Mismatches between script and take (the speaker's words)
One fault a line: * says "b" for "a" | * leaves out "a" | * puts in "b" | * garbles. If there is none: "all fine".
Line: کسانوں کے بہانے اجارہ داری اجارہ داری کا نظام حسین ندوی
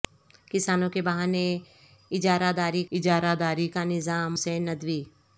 all fine